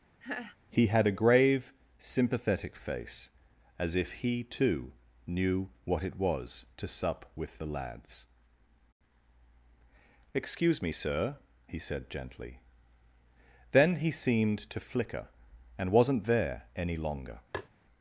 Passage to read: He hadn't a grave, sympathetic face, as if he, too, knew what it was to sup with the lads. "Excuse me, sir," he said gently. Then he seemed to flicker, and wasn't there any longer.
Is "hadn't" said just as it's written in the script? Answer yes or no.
no